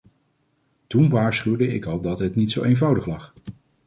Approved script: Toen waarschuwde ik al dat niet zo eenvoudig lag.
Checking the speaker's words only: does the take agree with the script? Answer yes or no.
no